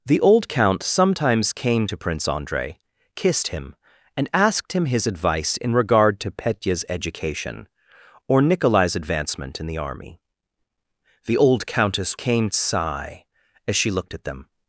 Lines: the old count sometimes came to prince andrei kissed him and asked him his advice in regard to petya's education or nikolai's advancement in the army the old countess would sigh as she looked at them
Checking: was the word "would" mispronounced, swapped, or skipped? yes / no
yes